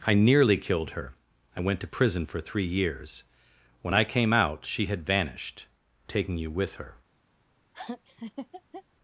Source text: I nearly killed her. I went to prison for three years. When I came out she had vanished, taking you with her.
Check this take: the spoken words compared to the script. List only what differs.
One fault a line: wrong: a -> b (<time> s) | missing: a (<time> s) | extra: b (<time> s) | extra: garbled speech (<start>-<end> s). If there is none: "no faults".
no faults